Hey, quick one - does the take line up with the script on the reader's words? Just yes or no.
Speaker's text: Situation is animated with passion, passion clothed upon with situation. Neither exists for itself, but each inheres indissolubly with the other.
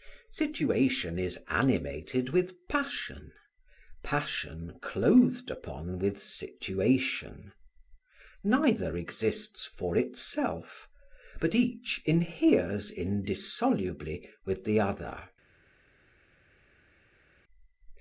yes